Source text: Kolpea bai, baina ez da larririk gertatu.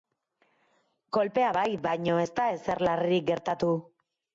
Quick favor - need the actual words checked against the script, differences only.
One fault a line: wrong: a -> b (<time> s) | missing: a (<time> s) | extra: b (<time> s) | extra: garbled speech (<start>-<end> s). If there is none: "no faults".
extra: ezer (2.6 s)